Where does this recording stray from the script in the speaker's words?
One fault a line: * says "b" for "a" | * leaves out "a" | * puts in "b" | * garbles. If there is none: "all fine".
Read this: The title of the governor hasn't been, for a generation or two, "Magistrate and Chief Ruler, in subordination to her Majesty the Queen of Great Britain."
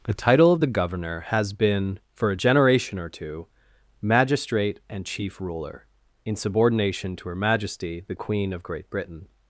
* says "has" for "hasn't"